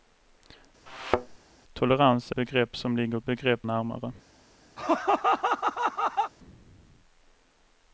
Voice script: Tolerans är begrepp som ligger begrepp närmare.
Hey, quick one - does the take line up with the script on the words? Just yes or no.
yes